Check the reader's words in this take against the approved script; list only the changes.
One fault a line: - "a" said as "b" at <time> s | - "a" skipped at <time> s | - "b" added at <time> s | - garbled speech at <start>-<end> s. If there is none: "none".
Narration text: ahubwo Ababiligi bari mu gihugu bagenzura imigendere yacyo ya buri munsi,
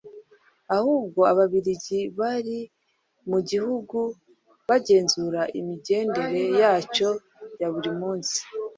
none